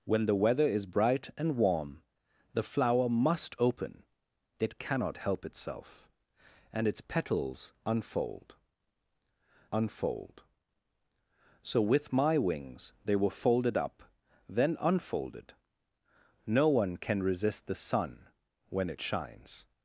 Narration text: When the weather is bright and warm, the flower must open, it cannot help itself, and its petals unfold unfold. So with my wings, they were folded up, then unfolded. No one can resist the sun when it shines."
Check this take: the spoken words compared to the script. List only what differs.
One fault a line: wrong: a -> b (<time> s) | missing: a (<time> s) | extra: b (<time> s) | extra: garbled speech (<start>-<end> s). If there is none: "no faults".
no faults